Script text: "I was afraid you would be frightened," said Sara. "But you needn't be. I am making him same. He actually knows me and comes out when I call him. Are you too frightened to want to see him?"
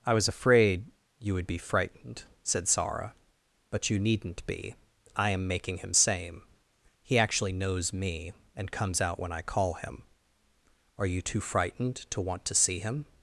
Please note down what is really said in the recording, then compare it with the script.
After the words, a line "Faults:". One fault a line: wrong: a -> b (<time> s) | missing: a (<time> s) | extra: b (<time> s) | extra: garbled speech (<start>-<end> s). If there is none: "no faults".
"I was afraid you would be frightened," said Sara. "But you needn't be. I am making him same. He actually knows me and comes out when I call him. Are you too frightened to want to see him?"
Faults:
no faults